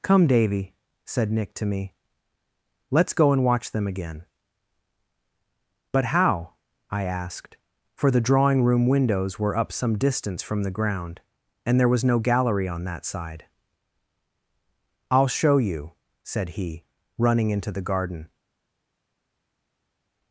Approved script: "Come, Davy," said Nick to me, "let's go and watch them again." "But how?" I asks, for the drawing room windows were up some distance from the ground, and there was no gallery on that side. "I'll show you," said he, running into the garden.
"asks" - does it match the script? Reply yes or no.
no